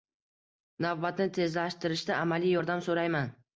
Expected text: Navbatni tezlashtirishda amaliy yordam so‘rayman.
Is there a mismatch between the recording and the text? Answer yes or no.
no